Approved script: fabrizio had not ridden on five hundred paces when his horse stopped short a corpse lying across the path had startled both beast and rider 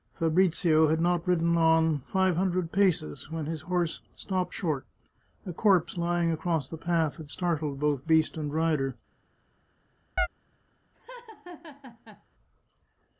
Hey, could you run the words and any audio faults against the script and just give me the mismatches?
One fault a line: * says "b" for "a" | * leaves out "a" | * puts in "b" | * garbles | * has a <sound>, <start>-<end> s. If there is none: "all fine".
* has a chirp, 10.2-10.3 s
* has a laugh, 10.9-12.2 s